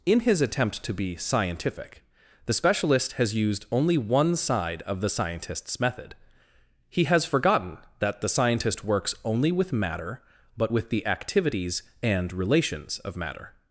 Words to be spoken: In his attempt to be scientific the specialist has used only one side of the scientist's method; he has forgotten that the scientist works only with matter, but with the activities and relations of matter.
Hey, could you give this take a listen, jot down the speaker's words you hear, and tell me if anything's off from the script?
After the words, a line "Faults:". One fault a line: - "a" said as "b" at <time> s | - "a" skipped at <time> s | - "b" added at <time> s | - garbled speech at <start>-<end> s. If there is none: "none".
In his attempt to be scientific the specialist has used only one side of the scientist's method; he has forgotten that the scientist works only with matter, but with the activities and relations of matter.
Faults:
none